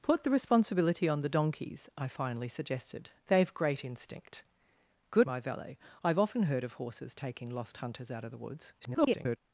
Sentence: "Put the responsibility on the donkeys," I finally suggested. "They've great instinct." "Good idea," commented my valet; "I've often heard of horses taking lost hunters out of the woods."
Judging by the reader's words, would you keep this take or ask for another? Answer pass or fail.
fail